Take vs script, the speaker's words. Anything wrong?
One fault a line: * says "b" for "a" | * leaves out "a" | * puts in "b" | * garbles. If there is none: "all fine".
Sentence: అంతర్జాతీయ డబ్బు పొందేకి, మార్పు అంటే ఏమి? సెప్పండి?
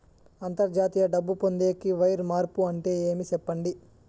* puts in "వైర్"